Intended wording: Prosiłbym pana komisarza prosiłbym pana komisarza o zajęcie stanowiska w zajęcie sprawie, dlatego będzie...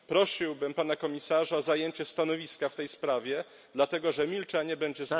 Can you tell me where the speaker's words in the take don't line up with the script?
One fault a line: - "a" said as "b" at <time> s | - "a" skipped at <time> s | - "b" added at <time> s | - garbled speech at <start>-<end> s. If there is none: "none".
- "prosiłbym pana komisarza" skipped at 1.6 s
- "zajęcie" said as "tej" at 2.8 s
- "że milczenie" added at 4.1 s